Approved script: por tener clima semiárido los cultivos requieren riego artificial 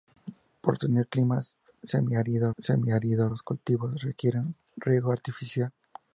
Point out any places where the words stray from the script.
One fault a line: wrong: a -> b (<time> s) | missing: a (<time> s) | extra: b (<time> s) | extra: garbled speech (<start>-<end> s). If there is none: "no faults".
extra: semiárido (2.6 s)